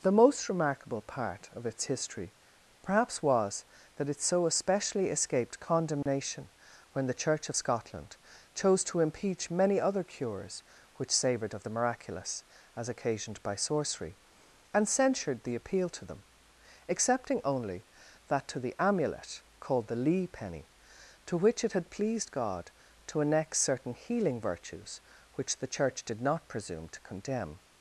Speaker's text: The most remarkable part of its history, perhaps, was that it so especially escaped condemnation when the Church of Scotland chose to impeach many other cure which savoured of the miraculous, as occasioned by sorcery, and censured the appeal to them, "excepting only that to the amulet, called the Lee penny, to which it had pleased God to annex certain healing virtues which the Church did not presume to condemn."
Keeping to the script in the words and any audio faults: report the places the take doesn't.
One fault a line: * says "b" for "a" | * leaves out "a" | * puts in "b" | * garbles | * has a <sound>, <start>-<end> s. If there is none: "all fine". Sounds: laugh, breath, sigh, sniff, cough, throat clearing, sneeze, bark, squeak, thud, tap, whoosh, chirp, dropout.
* has a dropout, 6.0-6.1 s
* says "cures" for "cure"